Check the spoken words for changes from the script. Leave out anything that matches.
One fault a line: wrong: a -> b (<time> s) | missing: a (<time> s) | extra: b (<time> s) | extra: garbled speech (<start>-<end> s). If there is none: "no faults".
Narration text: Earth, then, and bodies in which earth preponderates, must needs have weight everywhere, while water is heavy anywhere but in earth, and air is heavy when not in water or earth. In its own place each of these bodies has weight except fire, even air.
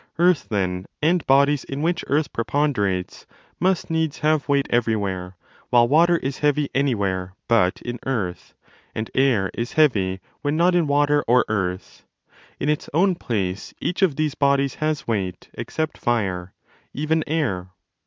no faults